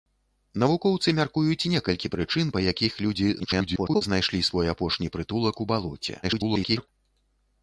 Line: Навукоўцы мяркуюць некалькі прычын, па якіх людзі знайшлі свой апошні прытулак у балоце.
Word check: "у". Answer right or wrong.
right